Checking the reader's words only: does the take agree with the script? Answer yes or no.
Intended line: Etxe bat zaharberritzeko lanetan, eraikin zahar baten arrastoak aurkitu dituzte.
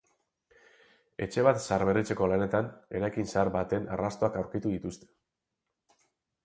yes